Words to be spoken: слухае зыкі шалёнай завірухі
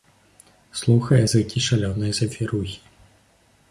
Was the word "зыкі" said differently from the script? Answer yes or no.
no